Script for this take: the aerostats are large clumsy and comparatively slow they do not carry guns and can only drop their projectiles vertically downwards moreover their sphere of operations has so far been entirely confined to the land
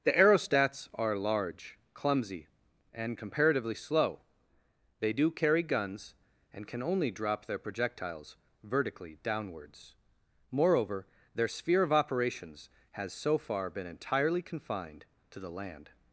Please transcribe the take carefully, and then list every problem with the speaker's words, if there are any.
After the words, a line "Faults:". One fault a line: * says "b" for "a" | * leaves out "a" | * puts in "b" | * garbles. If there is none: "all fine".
the aerostats are large clumsy and comparatively slow they do carry guns and can only drop their projectiles vertically downwards moreover their sphere of operations has so far been entirely confined to the land
Faults:
* leaves out "not"